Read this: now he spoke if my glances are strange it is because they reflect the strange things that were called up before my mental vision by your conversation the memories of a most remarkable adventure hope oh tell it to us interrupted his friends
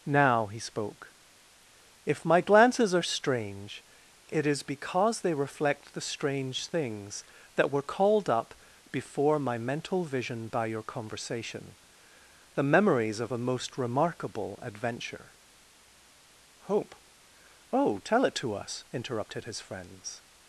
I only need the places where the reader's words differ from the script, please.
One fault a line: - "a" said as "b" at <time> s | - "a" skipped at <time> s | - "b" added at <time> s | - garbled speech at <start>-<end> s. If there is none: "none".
none